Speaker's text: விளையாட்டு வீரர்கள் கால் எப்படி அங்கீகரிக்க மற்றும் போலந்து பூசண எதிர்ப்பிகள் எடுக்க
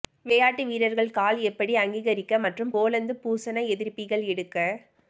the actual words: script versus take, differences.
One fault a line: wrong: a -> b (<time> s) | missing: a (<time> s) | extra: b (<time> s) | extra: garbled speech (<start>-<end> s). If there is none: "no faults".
no faults